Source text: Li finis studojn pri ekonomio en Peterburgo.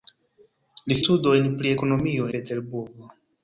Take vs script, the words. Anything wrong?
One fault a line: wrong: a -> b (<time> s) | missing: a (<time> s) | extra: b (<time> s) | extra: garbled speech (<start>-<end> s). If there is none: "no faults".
missing: finis (1.0 s)
missing: en (2.3 s)